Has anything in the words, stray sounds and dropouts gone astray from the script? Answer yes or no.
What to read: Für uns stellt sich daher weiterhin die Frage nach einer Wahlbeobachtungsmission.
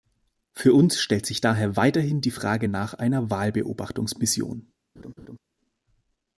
yes